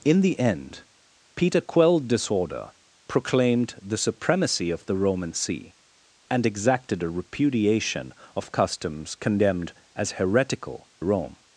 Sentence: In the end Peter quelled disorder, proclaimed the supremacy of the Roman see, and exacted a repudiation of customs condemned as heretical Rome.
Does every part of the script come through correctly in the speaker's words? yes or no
yes